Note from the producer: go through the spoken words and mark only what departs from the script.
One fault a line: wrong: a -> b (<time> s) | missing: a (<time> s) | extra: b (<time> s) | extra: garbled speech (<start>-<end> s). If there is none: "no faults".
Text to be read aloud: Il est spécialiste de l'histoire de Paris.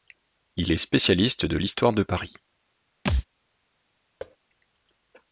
no faults